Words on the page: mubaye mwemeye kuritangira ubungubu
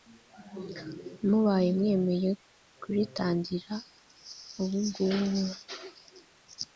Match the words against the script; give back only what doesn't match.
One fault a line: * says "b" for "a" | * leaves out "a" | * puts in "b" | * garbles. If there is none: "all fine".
all fine